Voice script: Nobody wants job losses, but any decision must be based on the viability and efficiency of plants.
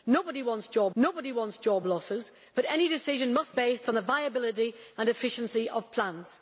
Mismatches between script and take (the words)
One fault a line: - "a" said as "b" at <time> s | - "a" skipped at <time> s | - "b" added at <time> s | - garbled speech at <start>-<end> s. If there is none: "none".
- "nobody wants job" added at 1.0 s
- "be" skipped at 3.5 s